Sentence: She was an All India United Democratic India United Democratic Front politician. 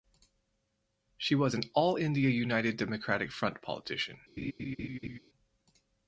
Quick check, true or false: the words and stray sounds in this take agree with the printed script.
false